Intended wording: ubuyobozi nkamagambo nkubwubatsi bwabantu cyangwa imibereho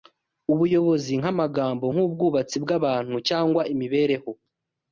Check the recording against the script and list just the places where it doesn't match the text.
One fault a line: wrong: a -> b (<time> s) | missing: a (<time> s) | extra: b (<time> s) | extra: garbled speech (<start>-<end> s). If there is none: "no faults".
no faults